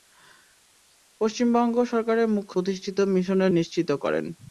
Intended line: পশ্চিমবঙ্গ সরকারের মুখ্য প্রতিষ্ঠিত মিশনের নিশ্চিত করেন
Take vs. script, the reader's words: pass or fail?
pass